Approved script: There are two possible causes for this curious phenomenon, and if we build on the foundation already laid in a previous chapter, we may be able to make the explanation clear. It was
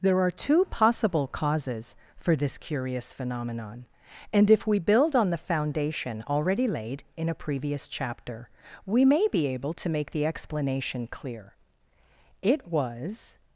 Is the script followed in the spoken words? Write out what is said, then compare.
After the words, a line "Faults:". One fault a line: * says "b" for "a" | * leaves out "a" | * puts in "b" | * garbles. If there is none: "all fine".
There are two possible causes for this curious phenomenon, and if we build on the foundation already laid in a previous chapter, we may be able to make the explanation clear. It was
Faults:
all fine